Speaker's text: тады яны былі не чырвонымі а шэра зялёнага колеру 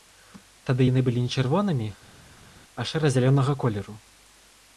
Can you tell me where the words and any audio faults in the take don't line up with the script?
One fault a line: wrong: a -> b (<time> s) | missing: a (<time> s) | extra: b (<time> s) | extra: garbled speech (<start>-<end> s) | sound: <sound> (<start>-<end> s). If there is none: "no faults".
no faults